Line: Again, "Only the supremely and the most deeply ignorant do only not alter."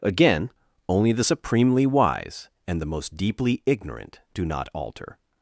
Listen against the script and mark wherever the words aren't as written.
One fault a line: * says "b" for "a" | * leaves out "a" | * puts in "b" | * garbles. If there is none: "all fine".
* puts in "wise"
* leaves out "only"